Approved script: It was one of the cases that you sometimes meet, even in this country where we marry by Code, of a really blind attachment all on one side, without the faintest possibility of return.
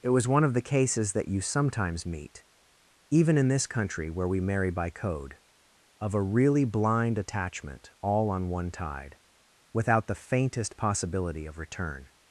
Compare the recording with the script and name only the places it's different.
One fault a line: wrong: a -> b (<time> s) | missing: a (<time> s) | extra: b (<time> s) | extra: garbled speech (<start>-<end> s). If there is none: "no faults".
wrong: side -> tide (8.7 s)